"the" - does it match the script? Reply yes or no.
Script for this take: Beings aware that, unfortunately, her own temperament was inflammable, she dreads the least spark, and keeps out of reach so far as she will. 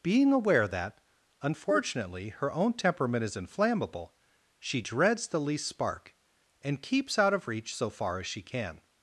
yes